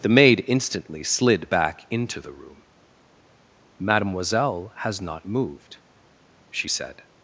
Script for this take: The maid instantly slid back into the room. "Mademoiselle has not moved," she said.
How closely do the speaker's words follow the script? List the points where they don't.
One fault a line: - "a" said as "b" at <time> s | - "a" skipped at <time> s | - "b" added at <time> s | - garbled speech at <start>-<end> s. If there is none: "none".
none